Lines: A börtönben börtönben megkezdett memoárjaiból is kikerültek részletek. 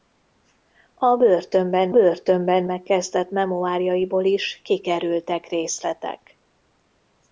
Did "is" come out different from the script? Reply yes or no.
no